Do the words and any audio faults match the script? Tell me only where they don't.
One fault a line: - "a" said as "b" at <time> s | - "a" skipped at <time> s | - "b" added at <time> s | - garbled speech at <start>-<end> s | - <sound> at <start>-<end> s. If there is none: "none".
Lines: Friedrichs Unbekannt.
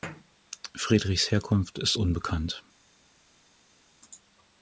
- "Herkunft ist" added at 1.3 s